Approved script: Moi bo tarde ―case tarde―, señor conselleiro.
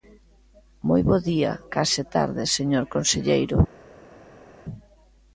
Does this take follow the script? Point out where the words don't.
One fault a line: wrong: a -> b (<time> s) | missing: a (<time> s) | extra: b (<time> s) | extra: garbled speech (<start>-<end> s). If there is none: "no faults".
wrong: tarde -> día (1.3 s)